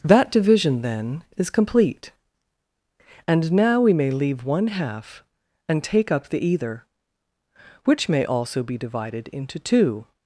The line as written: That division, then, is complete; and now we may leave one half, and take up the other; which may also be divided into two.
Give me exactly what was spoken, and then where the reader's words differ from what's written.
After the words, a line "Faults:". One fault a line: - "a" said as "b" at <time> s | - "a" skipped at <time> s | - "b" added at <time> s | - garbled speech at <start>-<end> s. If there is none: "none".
That division, then, is complete; and now we may leave one half, and take up the either; which may also be divided into two.
Faults:
- "other" said as "either" at 6.4 s